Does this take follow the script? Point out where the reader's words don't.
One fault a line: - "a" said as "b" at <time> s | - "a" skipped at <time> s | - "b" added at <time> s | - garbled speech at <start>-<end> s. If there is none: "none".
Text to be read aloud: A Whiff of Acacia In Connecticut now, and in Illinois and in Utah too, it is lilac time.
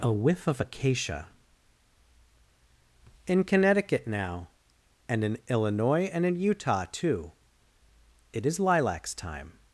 - "lilac" said as "lilacs" at 8.6 s